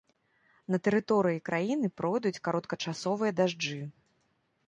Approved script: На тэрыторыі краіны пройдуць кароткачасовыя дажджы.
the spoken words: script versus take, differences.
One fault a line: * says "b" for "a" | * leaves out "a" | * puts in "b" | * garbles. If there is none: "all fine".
all fine